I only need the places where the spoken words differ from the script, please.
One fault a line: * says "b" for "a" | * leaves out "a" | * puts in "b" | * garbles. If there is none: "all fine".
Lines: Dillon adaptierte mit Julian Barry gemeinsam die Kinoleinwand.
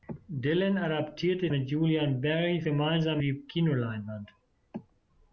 all fine